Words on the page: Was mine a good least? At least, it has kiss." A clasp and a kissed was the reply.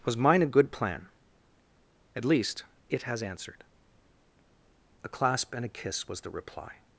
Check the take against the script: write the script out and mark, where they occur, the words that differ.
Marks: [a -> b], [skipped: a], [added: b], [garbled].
Was mine a good [least? -> plan] At least, it has [kiss." -> answered] A clasp and a [kissed -> kiss] was the reply.